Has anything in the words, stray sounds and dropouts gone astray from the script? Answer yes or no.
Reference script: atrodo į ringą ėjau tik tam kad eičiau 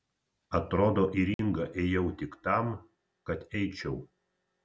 yes